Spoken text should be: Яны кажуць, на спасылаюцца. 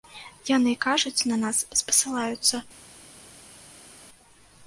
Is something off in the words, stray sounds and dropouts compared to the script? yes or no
yes